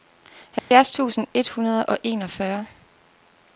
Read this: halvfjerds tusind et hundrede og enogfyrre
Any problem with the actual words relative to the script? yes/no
no